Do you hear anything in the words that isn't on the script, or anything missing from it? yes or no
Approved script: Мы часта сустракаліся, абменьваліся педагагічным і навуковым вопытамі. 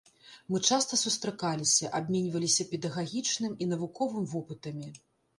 no